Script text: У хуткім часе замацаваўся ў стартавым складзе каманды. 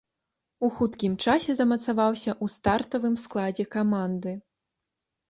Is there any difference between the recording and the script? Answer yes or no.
no